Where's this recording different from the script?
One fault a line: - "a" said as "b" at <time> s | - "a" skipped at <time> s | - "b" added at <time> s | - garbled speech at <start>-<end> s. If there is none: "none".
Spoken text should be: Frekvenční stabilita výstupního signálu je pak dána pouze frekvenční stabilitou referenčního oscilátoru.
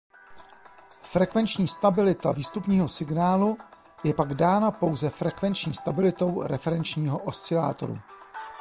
none